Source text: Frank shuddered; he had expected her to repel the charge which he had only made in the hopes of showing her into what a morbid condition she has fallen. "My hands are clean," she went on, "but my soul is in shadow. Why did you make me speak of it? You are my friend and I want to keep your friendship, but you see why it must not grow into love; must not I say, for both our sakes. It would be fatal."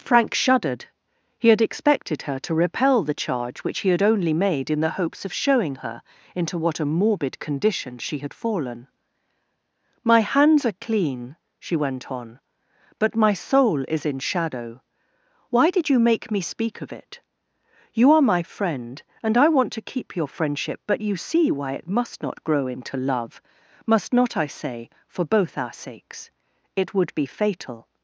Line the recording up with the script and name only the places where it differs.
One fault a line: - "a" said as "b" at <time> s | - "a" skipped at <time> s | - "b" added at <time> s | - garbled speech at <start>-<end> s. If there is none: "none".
- "has" said as "had" at 8.2 s